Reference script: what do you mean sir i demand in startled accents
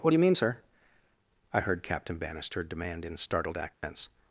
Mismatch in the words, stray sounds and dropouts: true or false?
true